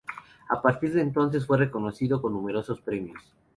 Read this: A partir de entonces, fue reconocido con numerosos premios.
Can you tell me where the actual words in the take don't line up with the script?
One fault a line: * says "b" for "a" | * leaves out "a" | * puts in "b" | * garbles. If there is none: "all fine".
all fine